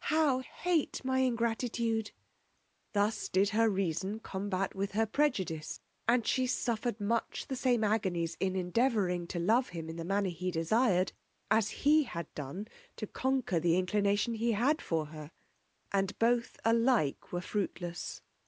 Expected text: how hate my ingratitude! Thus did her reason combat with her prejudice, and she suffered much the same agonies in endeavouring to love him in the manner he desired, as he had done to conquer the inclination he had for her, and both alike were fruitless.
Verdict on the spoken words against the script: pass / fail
pass